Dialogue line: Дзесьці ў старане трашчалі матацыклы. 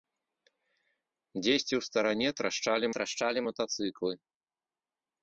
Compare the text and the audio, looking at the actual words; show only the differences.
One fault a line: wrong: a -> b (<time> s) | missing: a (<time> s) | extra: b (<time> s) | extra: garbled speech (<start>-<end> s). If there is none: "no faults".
extra: трашчалі (3.0 s)